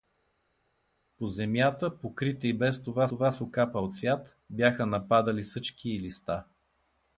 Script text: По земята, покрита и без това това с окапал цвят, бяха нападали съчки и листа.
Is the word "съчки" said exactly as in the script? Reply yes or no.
yes